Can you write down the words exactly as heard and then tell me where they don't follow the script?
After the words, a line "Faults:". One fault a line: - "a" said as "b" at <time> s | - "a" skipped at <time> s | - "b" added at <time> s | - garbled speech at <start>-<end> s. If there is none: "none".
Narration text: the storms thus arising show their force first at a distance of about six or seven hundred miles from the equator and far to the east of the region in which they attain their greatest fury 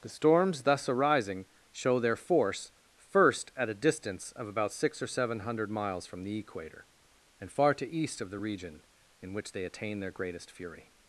the storms thus arising show their force first at a distance of about six or seven hundred miles from the equator and far to east of the region in which they attain their greatest fury
Faults:
- "the" skipped at 7.9 s